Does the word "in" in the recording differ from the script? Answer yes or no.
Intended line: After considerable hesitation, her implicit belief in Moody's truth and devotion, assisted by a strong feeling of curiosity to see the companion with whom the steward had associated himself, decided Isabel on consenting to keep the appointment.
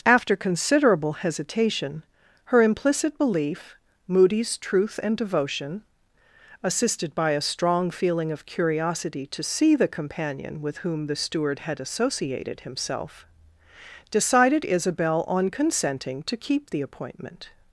yes